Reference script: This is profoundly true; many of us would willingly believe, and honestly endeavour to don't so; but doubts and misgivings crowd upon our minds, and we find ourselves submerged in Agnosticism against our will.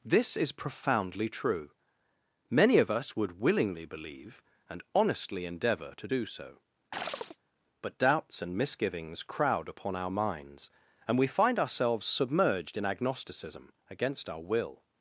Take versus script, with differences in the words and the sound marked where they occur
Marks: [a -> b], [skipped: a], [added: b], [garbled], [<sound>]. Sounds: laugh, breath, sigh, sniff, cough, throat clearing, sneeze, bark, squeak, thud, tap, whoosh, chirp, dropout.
This is profoundly true; many of us would willingly believe, and honestly endeavour to [don't -> do] so; [chirp] but doubts and misgivings crowd upon our minds, and we find ourselves submerged in Agnosticism against our will.